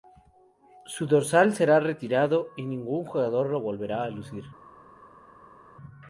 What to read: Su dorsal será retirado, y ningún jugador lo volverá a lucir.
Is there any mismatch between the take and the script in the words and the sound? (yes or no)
no